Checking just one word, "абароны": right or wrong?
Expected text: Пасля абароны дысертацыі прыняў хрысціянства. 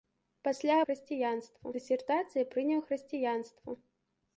wrong